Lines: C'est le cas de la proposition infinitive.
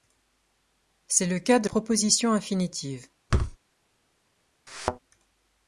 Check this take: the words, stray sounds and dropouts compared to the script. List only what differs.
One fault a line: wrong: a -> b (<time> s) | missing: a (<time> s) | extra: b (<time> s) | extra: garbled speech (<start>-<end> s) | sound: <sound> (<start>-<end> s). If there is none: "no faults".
missing: la (1.7 s)
sound: thud (3.3-3.6 s)
sound: thud (4.7-5.0 s)